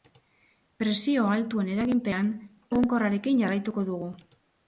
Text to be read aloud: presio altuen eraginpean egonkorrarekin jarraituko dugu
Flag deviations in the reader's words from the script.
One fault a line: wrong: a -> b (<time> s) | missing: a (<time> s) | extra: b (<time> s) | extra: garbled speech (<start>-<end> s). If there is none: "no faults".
no faults